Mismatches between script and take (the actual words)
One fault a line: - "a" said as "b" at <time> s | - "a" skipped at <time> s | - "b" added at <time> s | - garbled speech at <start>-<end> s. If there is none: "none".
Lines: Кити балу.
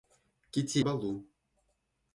none